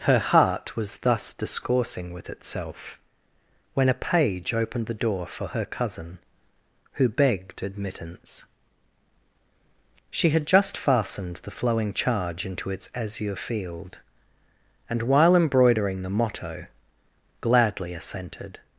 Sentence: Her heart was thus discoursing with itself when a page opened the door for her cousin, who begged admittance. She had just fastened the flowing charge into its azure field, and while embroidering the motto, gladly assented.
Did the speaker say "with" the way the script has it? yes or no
yes